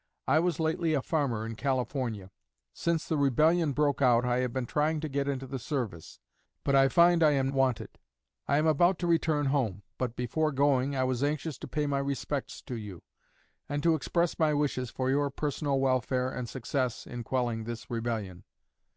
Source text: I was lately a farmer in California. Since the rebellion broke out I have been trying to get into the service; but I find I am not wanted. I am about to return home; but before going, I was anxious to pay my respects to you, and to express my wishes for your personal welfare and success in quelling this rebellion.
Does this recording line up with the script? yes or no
no